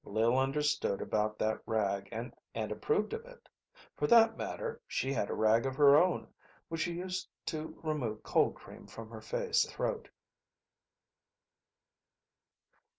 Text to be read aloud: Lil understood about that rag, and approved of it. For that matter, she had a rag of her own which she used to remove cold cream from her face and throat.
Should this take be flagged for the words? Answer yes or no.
yes